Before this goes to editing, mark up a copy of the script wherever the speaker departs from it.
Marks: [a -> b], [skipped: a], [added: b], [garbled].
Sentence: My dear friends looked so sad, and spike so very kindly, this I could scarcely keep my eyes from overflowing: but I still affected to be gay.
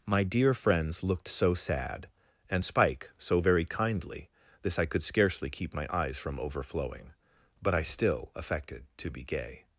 My dear friends looked so sad, and spike so very kindly, this I could scarcely keep my eyes from overflowing: but I still affected to be gay.